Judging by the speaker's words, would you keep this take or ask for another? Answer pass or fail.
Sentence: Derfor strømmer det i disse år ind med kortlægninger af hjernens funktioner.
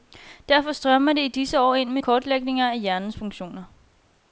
pass